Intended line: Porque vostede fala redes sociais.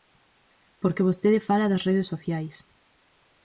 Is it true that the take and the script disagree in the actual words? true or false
true